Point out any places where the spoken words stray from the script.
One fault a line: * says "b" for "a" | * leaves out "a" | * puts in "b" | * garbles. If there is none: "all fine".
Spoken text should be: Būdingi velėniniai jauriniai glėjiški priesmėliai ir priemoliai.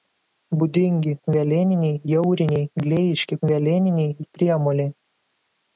* says "velėniniai" for "priesmėliai"